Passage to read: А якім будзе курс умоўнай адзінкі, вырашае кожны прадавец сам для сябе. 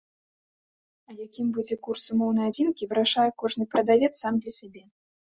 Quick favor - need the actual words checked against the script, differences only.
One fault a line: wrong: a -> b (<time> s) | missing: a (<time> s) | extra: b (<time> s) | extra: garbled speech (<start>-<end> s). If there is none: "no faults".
no faults